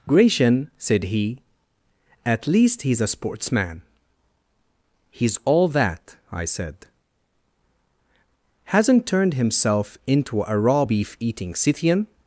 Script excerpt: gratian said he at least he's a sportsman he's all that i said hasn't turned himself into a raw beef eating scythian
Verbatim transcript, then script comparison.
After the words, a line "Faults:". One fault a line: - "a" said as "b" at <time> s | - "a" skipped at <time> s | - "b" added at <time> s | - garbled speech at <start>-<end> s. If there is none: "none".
gratian said he at least he's a sportsman he's all that i said hasn't turned himself into a raw beef eating scythian
Faults:
none